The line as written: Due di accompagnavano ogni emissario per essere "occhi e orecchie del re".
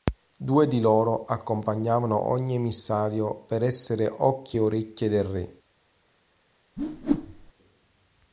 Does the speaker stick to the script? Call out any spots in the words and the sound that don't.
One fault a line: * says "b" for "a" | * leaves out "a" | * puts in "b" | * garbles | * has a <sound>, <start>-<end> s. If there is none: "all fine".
* puts in "loro"
* has a whoosh, 6.8-7.5 s